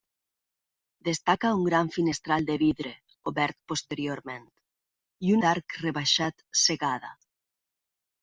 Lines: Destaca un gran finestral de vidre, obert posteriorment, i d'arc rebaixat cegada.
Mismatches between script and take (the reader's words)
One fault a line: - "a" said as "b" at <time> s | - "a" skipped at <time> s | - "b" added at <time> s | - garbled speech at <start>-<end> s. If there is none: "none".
none